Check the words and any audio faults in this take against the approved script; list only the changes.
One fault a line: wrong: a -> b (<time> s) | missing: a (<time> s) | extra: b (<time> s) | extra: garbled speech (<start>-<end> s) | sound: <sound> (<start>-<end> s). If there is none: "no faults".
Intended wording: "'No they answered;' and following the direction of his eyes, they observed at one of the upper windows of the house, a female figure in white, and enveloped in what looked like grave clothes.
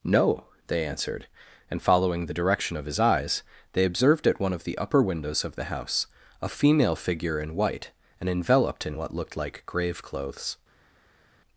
no faults